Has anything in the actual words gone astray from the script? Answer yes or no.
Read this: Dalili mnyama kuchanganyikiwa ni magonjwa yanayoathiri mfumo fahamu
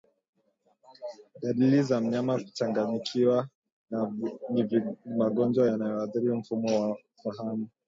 yes